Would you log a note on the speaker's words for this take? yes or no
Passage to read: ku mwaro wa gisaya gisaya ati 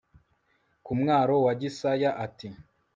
yes